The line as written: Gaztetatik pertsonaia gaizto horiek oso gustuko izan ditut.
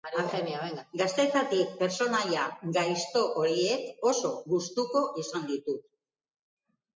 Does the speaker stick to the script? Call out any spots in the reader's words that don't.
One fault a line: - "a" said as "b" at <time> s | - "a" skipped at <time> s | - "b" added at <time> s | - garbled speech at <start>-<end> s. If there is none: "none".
none